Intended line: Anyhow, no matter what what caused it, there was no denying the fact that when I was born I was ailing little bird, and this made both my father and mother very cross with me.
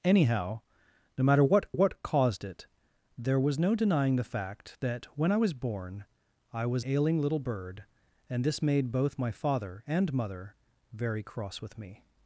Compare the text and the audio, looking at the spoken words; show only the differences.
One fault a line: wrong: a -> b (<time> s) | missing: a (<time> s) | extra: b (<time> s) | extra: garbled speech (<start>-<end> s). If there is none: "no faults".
no faults